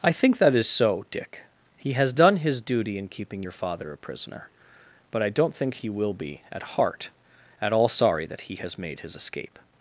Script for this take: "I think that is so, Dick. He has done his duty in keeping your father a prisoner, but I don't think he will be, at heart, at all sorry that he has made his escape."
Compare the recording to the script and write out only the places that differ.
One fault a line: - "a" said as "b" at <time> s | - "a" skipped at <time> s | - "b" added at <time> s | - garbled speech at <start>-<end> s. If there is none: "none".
none